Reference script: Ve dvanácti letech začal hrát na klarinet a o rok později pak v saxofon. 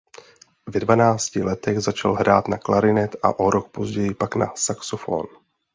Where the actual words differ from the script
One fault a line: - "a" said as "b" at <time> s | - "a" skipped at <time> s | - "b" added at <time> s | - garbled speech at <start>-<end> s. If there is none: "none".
- "v" said as "na" at 4.3 s